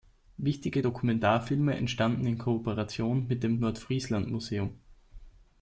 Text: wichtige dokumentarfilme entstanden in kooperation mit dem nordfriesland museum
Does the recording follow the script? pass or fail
pass